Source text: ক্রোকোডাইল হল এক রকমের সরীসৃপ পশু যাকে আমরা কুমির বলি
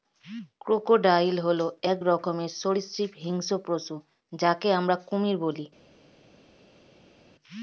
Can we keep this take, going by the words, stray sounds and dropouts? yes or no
no